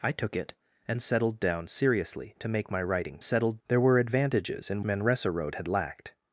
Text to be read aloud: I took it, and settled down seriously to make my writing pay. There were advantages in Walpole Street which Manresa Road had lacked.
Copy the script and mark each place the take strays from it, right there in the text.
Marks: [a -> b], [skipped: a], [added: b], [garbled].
I took it, and settled down seriously to make my writing [pay. -> settled] There were advantages in [skipped: Walpole Street which] Manresa Road had lacked.